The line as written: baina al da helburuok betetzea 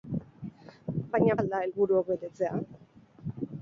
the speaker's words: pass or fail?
pass